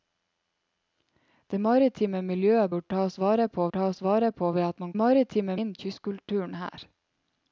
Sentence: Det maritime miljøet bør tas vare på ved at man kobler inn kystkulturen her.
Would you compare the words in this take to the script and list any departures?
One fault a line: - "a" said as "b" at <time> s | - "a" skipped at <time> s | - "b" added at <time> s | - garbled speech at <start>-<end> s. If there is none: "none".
- "tas vare på" added at 3.8 s
- "kobler" said as "maritime" at 5.0 s